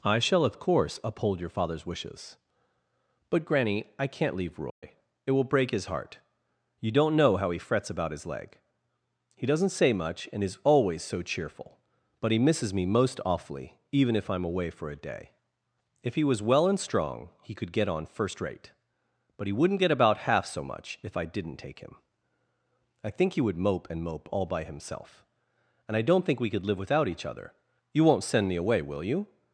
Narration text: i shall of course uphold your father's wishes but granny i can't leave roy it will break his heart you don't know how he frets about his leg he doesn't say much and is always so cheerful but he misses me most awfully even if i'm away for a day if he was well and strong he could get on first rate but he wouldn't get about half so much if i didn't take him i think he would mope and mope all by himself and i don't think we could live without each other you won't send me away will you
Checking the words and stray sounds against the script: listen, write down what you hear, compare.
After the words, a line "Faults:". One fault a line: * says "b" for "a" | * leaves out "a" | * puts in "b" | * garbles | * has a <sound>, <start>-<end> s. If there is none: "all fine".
i shall of course uphold your father's wishes but granny i can't leave roy it will break his heart you don't know how he frets about his leg he doesn't say much and is always so cheerful but he misses me most awfully even if i'm away for a day if he was well and strong he could get on first rate but he wouldn't get about half so much if i didn't take him i think he would mope and mope all by himself and i don't think we could live without each other you won't send me away will you
Faults:
* has a dropout, 4.7-4.8 s